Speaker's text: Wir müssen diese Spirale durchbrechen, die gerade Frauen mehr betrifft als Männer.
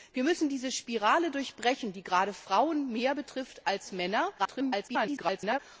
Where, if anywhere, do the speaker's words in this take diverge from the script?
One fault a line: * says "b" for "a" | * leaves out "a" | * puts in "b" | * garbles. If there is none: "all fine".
* garbles